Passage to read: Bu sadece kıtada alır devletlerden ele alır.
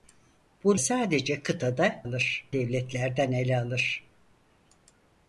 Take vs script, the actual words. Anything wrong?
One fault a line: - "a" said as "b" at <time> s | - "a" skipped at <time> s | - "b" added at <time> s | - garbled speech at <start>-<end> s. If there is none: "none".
none